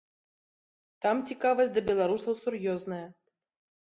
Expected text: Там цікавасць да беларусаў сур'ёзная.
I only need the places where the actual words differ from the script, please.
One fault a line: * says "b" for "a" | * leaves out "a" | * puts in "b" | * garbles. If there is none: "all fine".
all fine